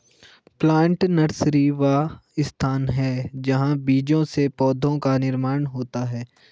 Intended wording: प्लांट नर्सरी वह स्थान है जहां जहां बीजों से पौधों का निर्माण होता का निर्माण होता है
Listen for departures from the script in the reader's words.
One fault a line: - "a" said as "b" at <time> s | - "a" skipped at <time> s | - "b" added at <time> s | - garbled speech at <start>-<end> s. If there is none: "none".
- "जहां" skipped at 3.8 s
- "का निर्माण होता" skipped at 6.0 s